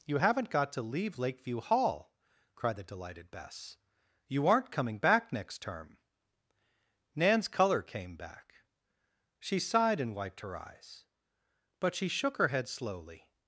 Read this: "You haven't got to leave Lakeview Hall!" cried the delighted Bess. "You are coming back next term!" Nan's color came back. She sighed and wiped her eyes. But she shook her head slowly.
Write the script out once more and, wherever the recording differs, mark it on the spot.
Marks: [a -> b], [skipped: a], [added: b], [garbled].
"You haven't got to leave Lakeview Hall!" cried the delighted Bess. "You [are -> aren't] coming back next term!" Nan's color came back. She sighed and wiped her eyes. But she shook her head slowly.